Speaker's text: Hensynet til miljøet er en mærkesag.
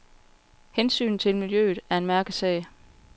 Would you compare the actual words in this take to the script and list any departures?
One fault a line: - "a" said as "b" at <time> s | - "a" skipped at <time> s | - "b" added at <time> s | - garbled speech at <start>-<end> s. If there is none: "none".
none